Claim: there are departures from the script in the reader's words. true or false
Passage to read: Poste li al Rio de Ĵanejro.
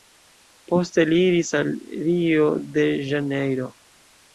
true